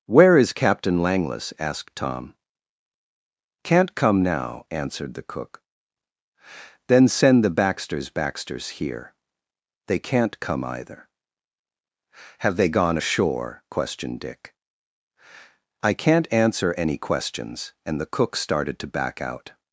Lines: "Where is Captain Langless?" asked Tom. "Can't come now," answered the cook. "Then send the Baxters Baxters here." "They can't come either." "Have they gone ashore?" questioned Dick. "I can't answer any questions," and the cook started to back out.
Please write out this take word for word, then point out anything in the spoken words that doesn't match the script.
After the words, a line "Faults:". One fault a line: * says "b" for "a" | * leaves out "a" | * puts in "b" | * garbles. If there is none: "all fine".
"Where is Captain Langless?" asked Tom. "Can't come now," answered the cook. "Then send the Baxters Baxters here." "They can't come either." "Have they gone ashore?" questioned Dick. "I can't answer any questions," and the cook started to back out.
Faults:
all fine